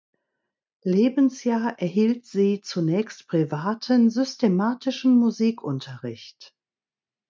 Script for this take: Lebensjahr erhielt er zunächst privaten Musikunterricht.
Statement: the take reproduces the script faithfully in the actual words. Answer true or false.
false